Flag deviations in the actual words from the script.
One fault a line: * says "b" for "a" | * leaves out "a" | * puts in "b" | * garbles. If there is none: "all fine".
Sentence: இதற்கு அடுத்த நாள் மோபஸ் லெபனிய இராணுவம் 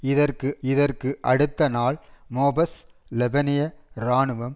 * puts in "இதற்கு"